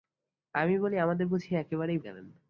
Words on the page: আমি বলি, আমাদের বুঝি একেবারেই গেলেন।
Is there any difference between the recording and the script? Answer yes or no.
no